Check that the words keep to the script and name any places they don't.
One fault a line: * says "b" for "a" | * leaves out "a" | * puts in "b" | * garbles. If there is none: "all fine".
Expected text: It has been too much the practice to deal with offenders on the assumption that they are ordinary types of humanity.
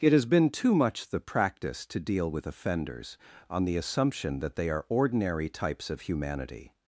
all fine